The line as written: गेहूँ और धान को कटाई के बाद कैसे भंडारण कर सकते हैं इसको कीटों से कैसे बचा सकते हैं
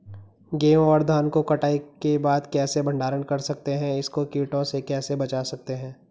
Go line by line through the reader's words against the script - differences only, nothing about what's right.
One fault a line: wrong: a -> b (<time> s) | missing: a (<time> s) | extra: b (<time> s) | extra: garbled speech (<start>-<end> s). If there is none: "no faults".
no faults